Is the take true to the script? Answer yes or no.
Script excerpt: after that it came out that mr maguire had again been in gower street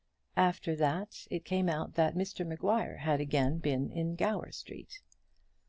yes